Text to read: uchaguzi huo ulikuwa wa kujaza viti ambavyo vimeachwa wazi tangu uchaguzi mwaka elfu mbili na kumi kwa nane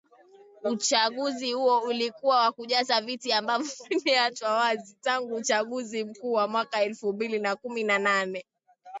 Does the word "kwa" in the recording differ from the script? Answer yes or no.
yes